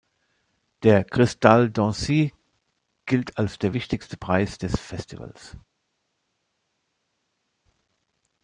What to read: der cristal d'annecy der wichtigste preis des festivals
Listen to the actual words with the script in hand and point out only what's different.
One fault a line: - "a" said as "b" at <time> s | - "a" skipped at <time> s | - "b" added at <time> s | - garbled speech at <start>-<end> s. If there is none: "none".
- "gilt als" added at 3.0 s